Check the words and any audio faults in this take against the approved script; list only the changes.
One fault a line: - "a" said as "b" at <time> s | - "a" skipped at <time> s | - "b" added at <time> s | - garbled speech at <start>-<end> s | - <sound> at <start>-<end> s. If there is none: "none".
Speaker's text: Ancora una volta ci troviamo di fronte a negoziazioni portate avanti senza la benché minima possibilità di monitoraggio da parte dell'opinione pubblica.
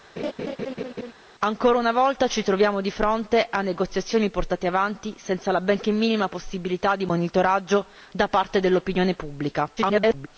- laugh at 0.2-1.1 s
- garbled speech at 9.8-10.3 s